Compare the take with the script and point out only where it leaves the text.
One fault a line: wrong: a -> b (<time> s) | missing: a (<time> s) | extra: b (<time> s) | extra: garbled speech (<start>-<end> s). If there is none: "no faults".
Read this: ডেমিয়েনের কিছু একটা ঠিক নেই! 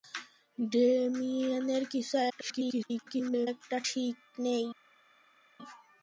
extra: garbled speech (2.3-3.5 s)